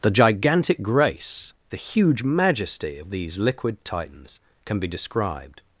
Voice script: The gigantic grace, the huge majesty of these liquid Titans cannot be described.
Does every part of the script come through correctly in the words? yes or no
no